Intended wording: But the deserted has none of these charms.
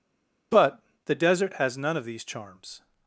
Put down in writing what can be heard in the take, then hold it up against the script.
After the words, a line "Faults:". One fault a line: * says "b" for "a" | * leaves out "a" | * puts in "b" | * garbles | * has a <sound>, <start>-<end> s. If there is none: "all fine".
But the desert has none of these charms.
Faults:
* says "desert" for "deserted"